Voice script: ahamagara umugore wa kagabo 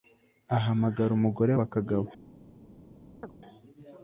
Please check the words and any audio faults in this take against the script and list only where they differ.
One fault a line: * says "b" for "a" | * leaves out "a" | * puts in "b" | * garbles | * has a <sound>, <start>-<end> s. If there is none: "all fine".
* has a chirp, 3.2-3.3 s